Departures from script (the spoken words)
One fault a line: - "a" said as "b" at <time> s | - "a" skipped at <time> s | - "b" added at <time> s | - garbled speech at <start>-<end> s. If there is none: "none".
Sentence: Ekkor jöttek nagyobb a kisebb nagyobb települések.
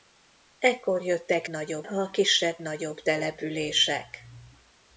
none